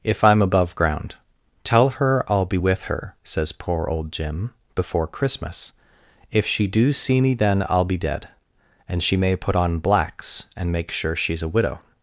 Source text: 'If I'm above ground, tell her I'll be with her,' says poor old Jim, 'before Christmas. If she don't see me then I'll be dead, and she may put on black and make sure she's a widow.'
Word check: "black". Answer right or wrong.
wrong